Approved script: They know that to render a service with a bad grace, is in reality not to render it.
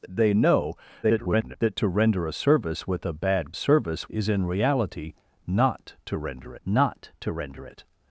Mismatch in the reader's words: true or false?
true